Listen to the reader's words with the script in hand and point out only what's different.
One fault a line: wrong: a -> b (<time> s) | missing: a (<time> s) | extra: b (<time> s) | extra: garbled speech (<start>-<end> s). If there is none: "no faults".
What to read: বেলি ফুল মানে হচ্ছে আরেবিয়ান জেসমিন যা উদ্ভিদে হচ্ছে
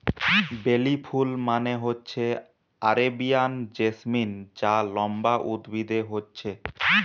extra: লম্বা (4.9 s)